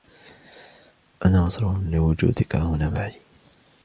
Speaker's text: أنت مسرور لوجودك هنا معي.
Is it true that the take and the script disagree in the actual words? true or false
true